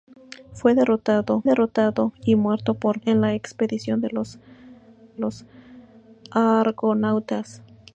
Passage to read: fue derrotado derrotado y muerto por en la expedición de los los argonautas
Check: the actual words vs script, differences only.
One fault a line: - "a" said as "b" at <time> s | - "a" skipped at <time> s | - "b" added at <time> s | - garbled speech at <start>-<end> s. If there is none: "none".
none